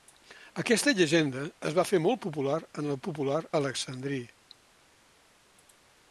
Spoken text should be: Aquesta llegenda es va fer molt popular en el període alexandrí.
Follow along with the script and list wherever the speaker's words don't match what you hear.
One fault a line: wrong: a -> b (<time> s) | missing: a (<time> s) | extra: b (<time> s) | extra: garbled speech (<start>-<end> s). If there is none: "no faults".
wrong: període -> popular (3.0 s)